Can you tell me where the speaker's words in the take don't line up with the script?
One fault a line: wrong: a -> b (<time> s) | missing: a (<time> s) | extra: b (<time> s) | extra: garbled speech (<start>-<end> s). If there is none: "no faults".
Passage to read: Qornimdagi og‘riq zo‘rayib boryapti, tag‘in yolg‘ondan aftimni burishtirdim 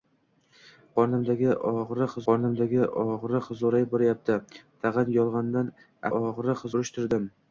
extra: qornimdagi og‘riq (2.3 s)
wrong: aftimni -> og‘riq (6.2 s)